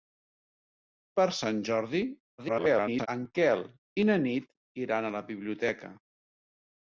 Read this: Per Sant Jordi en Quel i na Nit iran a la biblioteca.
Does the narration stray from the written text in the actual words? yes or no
yes